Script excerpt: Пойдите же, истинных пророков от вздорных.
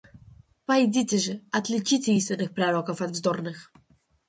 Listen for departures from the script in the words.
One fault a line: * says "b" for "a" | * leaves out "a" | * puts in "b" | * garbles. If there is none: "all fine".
* puts in "отличите"